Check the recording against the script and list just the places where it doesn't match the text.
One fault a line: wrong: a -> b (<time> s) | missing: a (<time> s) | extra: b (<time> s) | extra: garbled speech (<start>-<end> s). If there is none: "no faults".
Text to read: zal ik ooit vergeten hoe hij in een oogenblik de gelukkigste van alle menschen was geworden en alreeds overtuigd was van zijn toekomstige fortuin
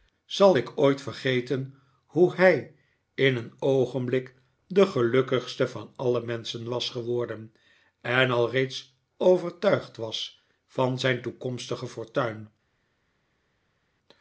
no faults